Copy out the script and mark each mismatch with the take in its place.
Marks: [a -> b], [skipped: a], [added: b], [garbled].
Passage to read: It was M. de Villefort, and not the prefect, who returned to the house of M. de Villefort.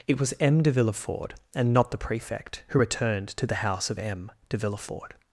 It was M. de Villefort, and not the prefect, who returned to the house of M. de Villefort.